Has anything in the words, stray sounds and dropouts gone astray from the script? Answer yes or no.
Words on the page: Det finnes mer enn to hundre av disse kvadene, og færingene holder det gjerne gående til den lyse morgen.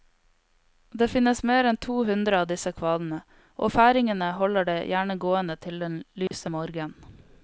yes